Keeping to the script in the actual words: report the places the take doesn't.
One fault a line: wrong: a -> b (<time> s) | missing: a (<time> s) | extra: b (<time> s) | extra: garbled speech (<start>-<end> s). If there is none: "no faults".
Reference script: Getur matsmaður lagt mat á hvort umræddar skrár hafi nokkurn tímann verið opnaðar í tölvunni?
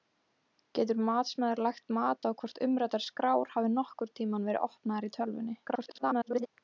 extra: garbled speech (5.6-6.5 s)